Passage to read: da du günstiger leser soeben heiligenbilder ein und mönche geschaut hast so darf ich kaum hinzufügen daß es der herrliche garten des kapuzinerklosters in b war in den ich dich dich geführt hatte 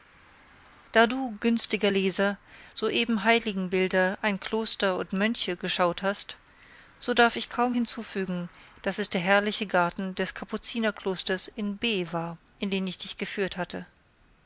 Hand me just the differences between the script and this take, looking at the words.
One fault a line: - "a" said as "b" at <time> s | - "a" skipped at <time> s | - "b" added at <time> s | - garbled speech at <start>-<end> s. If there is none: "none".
- "kloster" added at 4.4 s
- "dich" skipped at 13.2 s